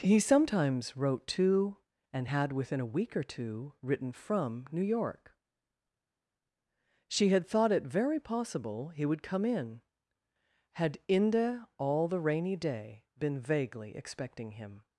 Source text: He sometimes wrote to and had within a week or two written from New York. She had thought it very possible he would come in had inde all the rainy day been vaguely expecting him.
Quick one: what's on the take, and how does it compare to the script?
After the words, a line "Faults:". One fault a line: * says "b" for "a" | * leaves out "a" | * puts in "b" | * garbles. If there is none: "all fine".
He sometimes wrote to and had within a week or two written from New York. She had thought it very possible he would come in had inde all the rainy day been vaguely expecting him.
Faults:
all fine